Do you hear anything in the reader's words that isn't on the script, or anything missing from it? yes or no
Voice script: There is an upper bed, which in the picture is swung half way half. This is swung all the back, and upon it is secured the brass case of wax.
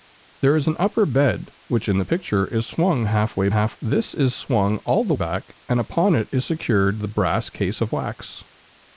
no